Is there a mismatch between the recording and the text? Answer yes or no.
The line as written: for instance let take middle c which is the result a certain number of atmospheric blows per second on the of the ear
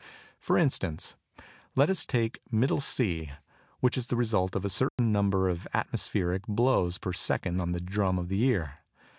yes